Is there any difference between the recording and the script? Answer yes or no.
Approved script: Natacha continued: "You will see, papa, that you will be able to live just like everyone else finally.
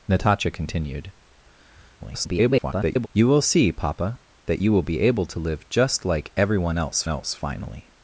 yes